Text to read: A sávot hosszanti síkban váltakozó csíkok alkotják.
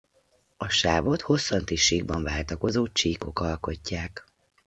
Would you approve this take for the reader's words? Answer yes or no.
yes